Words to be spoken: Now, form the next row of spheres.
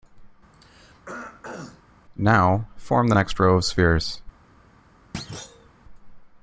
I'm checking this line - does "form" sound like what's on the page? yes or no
yes